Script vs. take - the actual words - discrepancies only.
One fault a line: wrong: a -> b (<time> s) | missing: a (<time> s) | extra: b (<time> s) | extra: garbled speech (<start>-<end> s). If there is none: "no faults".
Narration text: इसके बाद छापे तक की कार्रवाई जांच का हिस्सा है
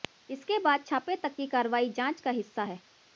no faults